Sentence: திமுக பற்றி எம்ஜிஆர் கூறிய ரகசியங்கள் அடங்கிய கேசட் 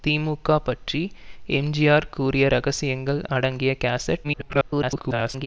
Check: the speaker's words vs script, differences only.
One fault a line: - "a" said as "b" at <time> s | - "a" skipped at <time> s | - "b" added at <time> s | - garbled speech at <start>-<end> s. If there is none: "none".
- garbled speech at 4.2-5.5 s